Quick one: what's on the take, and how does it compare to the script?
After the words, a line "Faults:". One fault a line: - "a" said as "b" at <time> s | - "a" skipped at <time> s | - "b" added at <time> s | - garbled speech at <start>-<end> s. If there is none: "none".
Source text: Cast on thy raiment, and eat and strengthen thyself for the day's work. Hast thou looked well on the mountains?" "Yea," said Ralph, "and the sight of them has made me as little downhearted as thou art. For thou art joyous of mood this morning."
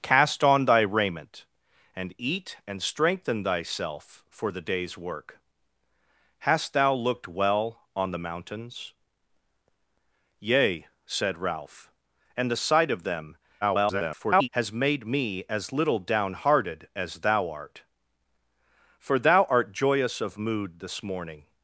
Cast on thy raiment, and eat and strengthen thyself for the day's work. Hast thou looked well on the mountains?" "Yea," said Ralph, "and the sight of them [garbled] has made me as little downhearted as thou art. For thou art joyous of mood this morning."
Faults:
- garbled speech at 13.6-14.5 s